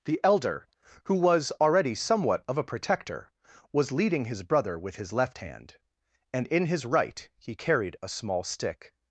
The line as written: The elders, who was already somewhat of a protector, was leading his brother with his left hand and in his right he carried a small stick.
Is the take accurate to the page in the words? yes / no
no